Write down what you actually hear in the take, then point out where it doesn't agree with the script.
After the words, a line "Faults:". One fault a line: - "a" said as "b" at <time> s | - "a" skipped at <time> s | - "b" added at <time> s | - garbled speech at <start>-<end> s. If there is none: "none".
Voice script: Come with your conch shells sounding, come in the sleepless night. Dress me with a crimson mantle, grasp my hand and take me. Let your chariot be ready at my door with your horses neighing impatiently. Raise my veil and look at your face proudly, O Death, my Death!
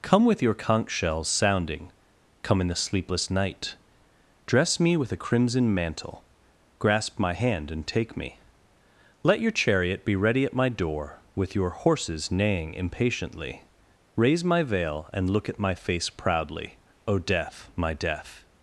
Come with your conch shells sounding, come in the sleepless night. Dress me with a crimson mantle, grasp my hand and take me. Let your chariot be ready at my door with your horses neighing impatiently. Raise my veil and look at my face proudly, O Death, my Death!
Faults:
- "your" said as "my" at 15.6 s